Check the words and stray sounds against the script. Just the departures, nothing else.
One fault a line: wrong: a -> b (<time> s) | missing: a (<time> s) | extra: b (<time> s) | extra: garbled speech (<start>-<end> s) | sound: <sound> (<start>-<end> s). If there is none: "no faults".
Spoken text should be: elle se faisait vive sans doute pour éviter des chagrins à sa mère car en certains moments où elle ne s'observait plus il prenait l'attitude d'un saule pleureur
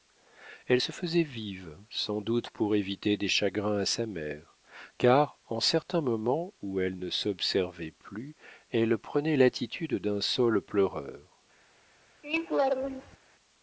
wrong: il -> elle (8.7 s)
sound: laugh (12.2-13.2 s)